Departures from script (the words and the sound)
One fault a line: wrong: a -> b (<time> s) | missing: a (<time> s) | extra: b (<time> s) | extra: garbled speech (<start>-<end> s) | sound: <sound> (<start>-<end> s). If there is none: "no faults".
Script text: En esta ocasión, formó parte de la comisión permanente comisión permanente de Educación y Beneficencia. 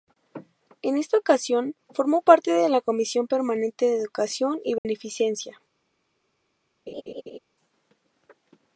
missing: comisión permanente (3.9 s)
sound: dropout (4.8-4.9 s)
sound: laugh (6.9-7.4 s)